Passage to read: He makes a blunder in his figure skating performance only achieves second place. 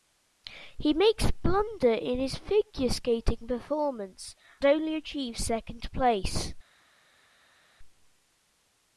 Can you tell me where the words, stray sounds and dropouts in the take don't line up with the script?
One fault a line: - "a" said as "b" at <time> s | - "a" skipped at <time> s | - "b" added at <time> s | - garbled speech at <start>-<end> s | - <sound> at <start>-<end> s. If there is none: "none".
none